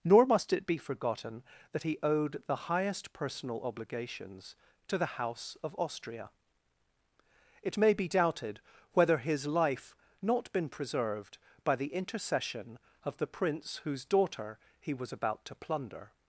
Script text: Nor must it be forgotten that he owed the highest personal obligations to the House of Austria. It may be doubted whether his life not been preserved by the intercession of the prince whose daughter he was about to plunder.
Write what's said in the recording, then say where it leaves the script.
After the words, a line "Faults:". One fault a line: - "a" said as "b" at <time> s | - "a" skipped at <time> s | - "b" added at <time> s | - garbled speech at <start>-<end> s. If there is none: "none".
Nor must it be forgotten that he owed the highest personal obligations to the House of Austria. It may be doubted whether his life not been preserved by the intercession of the prince whose daughter he was about to plunder.
Faults:
none